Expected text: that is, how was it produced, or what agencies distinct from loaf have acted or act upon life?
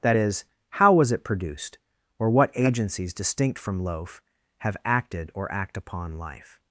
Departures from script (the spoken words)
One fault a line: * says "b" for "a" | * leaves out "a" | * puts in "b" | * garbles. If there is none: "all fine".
all fine